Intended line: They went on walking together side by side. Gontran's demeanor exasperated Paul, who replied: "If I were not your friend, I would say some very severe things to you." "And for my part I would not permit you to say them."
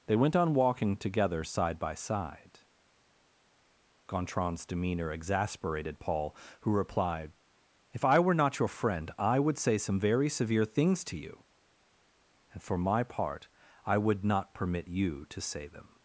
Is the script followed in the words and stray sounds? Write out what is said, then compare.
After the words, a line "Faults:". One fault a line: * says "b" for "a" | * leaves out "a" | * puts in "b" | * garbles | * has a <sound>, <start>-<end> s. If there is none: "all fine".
They went on walking together side by side. Gontran's demeanor exasperated Paul, who replied: "If I were not your friend, I would say some very severe things to you." "And for my part I would not permit you to say them."
Faults:
all fine